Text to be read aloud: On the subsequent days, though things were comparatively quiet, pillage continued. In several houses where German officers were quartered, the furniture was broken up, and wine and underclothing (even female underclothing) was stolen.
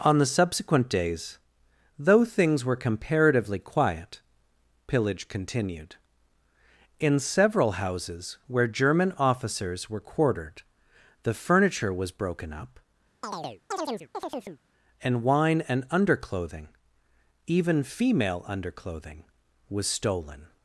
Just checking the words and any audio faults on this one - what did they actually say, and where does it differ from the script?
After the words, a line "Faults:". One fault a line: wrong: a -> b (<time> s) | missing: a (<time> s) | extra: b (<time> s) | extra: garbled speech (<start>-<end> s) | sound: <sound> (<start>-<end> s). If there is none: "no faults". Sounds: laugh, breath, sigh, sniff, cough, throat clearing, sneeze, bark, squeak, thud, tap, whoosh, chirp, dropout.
On the subsequent days, though things were comparatively quiet, pillage continued. In several houses where German officers were quartered, the furniture was broken up, and wine and underclothing (even female underclothing) was stolen.
Faults:
sound: chirp (13.2-14.6 s)